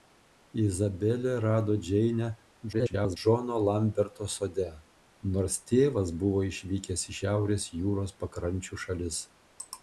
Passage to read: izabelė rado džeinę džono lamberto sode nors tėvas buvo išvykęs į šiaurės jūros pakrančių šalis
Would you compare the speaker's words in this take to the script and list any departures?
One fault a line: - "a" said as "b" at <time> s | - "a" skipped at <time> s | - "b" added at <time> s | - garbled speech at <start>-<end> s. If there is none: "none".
- garbled speech at 2.7-3.2 s